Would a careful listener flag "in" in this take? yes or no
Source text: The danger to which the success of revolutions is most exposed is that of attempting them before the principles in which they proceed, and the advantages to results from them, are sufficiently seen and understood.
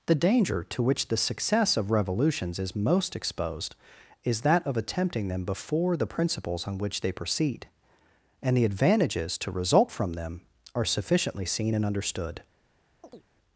yes